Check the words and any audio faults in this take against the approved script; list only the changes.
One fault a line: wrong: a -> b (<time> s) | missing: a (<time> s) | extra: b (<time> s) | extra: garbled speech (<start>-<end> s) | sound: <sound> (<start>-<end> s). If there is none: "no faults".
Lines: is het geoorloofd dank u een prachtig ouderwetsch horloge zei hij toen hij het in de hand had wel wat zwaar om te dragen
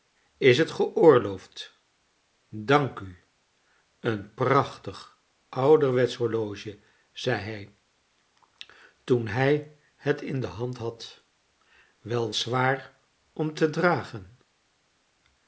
missing: wat (12.3 s)